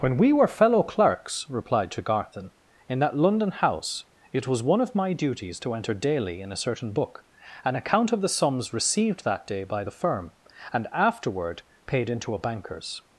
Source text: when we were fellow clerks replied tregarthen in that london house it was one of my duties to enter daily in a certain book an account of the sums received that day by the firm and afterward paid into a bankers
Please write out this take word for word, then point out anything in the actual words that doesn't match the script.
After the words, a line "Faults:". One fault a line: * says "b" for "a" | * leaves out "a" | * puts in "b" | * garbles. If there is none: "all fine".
when we were fellow clerks replied tregarthen in that london house it was one of my duties to enter daily in a certain book an account of the sums received that day by the firm and afterward paid into a bankers
Faults:
all fine